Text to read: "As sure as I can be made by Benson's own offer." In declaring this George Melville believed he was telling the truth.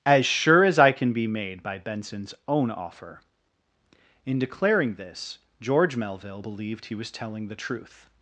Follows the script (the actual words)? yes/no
yes